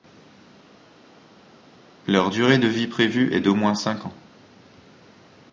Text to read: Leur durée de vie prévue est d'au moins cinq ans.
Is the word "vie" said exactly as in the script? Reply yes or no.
yes